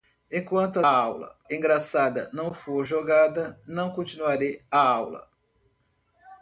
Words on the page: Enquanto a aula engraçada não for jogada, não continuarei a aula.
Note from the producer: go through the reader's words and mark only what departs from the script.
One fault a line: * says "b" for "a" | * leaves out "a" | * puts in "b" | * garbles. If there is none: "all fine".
all fine